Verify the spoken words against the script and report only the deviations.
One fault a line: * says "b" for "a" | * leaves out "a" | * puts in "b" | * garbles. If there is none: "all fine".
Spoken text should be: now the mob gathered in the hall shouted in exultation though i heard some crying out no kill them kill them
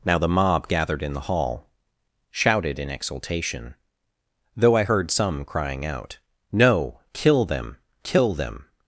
all fine